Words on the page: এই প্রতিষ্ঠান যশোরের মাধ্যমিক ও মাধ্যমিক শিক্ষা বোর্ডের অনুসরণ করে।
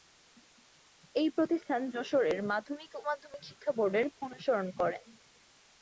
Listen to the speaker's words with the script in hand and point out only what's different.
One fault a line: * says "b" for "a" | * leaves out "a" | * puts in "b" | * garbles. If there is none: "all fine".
all fine